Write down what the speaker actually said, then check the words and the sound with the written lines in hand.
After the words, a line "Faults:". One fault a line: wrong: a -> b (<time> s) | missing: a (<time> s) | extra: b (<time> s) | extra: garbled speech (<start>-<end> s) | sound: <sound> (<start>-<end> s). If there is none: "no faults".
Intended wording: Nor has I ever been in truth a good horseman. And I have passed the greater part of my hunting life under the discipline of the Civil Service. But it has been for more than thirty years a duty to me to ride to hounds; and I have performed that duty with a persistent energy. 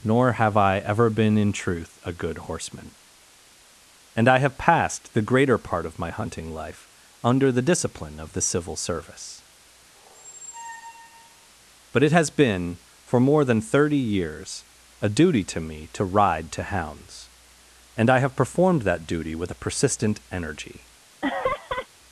Nor have I ever been in truth a good horseman. And I have passed the greater part of my hunting life under the discipline of the Civil Service. But it has been for more than thirty years a duty to me to ride to hounds; and I have performed that duty with a persistent energy.
Faults:
wrong: has -> have (0.3 s)
sound: squeak (9.9-11.5 s)
sound: laugh (21.2-21.9 s)